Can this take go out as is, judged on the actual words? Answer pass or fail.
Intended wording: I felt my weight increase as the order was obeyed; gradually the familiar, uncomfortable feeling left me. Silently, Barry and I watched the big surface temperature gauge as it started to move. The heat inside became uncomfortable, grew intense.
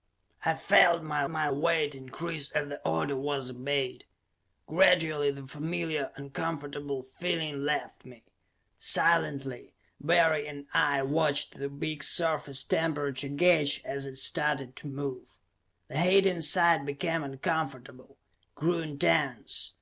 fail